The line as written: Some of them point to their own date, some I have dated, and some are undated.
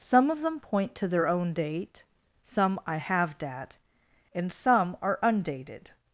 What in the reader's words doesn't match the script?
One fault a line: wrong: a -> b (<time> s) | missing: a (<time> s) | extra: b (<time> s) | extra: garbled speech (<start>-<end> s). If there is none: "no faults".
wrong: dated -> dat (3.4 s)